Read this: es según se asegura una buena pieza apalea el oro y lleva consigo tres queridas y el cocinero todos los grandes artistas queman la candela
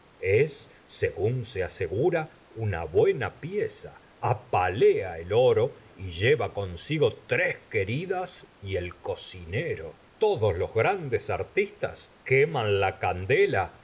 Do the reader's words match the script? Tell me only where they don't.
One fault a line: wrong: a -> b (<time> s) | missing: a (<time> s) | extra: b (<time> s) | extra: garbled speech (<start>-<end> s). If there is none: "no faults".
no faults